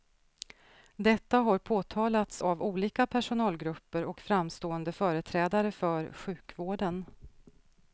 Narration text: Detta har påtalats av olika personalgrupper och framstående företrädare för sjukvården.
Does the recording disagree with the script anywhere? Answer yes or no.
no